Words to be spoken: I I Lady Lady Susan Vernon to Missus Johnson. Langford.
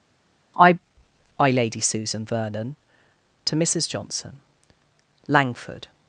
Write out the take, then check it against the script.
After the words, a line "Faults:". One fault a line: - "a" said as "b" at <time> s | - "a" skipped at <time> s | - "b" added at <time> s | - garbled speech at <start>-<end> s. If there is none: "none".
I I Lady Susan Vernon to Missus Johnson. Langford.
Faults:
- "Lady" skipped at 1.8 s